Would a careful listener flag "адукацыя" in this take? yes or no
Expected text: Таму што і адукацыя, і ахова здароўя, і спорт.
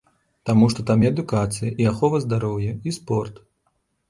no